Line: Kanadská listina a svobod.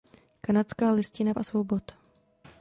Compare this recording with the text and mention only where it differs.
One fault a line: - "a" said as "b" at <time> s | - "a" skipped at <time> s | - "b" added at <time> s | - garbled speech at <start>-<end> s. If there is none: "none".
none